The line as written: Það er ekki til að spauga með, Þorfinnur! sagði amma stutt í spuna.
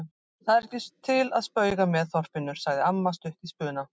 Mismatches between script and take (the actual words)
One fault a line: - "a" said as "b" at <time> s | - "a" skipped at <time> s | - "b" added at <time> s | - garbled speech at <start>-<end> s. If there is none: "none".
none